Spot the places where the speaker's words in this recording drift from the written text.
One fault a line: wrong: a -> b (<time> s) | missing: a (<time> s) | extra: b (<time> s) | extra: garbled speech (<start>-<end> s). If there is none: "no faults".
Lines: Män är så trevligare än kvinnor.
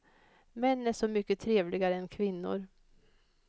extra: mycket (1.1 s)